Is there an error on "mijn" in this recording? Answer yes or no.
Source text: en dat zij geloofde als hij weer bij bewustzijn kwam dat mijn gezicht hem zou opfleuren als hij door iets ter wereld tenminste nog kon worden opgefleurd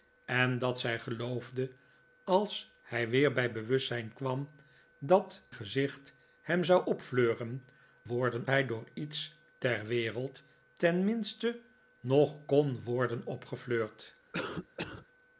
yes